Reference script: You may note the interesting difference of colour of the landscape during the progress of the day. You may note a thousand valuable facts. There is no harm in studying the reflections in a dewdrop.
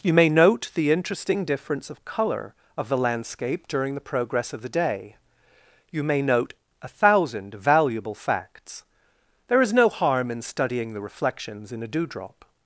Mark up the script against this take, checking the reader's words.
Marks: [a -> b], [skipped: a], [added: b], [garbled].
You may note the interesting difference of colour of the landscape during the progress of the day. You may note a thousand valuable facts. There is no harm in studying the reflections in a dewdrop.